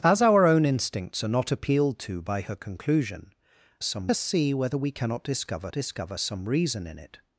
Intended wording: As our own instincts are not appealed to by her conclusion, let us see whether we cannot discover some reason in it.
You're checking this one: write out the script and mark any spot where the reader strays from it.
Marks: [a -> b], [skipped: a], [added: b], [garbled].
As our own instincts are not appealed to by her conclusion, [let -> some] us see whether we cannot discover [added: discover] some reason in it.